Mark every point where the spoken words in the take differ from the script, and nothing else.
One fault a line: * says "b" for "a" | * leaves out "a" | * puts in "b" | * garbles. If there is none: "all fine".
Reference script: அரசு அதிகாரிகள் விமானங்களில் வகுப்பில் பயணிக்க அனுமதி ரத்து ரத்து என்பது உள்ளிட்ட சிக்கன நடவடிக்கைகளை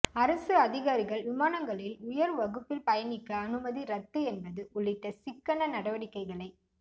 * puts in "உயர்"
* leaves out "ரத்து"